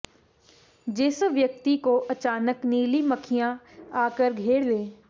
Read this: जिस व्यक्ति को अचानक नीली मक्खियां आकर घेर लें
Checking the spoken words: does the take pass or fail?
pass